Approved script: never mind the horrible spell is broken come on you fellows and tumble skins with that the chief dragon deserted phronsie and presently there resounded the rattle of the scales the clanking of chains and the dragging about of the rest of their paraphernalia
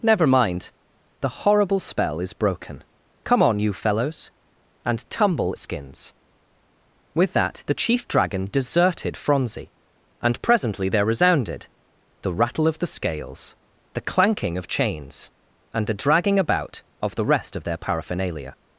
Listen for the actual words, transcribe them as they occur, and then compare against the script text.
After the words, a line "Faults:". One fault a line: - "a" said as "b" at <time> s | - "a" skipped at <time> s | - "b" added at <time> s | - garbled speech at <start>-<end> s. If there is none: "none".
never mind the horrible spell is broken come on you fellows and tumble skins with that the chief dragon deserted phronsie and presently there resounded the rattle of the scales the clanking of chains and the dragging about of the rest of their paraphernalia
Faults:
none